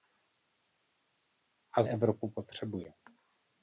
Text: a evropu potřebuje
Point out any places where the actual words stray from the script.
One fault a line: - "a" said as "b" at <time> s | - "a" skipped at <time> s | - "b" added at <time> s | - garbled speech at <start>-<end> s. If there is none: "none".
none